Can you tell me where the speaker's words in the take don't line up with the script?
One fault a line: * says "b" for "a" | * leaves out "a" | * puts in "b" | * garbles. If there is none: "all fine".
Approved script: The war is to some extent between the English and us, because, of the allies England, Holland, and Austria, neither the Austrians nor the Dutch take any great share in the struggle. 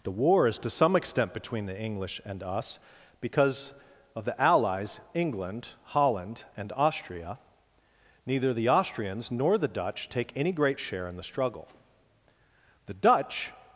* puts in "The Dutch"